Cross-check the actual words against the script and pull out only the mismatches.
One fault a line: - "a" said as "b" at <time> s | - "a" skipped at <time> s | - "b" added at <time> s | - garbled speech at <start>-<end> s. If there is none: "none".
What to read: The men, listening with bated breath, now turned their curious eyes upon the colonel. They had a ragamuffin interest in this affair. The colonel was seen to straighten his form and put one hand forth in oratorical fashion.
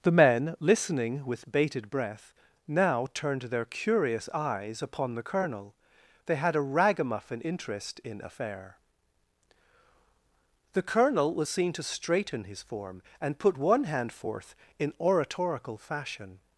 - "this" skipped at 8.2 s